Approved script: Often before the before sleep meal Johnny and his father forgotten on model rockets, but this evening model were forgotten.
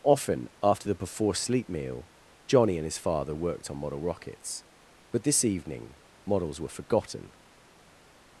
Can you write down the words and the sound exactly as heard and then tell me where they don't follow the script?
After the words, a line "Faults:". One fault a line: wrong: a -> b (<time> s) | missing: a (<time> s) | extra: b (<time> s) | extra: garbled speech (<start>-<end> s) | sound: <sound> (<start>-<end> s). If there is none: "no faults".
Often after the before sleep meal Johnny and his father worked on model rockets, but this evening models were forgotten.
Faults:
wrong: before -> after (0.6 s)
wrong: forgotten -> worked (3.4 s)
wrong: model -> models (6.2 s)